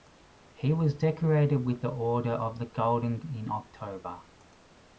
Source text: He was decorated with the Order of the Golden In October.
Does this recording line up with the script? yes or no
yes